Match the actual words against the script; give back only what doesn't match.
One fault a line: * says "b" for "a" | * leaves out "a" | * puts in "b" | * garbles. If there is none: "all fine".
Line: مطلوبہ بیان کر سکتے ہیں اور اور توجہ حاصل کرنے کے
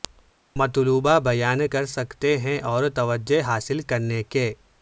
* leaves out "اور"